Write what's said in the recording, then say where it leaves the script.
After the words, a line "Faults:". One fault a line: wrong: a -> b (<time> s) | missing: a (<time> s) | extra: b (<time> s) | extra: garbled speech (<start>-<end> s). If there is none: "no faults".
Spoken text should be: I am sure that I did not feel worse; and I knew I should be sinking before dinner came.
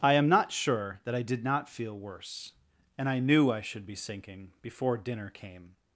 I am not sure that I did not feel worse; and I knew I should be sinking before dinner came.
Faults:
extra: not (0.3 s)